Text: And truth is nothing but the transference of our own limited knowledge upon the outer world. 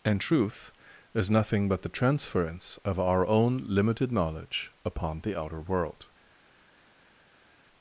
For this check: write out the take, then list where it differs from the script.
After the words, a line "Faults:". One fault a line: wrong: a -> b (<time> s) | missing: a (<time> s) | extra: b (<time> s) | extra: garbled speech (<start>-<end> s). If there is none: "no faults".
And truth is nothing but the transference of our own limited knowledge upon the outer world.
Faults:
no faults